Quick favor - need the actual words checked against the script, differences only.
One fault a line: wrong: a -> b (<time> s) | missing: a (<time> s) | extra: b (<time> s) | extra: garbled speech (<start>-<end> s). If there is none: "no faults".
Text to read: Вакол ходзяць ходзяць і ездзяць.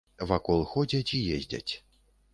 missing: ходзяць (1.1 s)